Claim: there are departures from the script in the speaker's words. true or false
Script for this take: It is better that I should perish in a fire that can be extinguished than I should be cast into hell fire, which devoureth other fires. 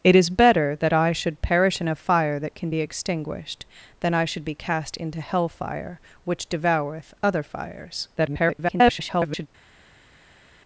true